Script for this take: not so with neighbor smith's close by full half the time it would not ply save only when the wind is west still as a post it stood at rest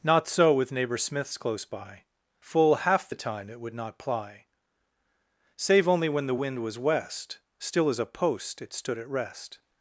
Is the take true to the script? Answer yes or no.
no